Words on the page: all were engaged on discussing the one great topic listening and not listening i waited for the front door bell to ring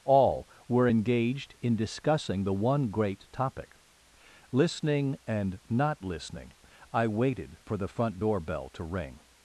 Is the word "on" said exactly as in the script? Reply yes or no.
no